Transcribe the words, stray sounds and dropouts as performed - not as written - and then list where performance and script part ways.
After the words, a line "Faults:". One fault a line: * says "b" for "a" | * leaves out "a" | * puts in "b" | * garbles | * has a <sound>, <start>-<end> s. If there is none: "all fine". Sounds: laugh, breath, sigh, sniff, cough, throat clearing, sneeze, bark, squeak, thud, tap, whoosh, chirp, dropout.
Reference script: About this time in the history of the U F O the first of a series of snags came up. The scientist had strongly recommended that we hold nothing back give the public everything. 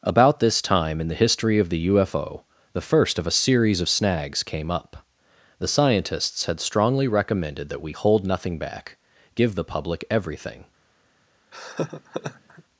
About this time in the history of the U F O the first of a series of snags came up. The scientists had strongly recommended that we hold nothing back give the public everything.
Faults:
* says "scientists" for "scientist"
* has a laugh, 11.5-12.6 s